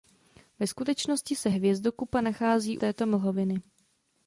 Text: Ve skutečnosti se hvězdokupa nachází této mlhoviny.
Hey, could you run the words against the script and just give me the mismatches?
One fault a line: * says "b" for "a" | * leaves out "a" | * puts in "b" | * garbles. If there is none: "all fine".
all fine